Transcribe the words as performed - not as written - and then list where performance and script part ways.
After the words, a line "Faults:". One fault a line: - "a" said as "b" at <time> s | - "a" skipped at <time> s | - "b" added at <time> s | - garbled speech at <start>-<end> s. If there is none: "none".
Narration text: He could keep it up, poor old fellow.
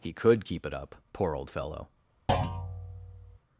He could keep it up, poor old fellow.
Faults:
none